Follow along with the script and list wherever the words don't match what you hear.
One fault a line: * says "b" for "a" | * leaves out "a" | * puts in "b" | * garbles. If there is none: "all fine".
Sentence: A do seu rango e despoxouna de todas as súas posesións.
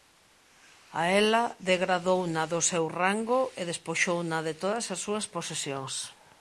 * puts in "ela degradouna"